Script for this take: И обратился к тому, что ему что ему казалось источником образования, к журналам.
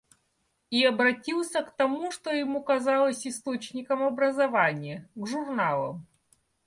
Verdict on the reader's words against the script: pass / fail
fail